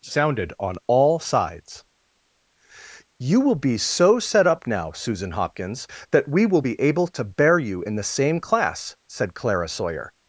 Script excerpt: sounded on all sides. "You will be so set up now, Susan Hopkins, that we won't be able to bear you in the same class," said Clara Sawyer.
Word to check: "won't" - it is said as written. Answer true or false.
false